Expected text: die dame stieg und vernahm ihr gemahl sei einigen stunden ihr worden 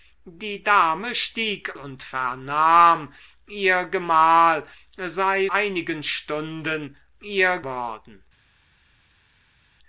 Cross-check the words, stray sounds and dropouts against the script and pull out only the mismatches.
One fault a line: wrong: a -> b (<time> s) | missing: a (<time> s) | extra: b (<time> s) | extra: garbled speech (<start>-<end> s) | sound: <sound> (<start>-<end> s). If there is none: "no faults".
no faults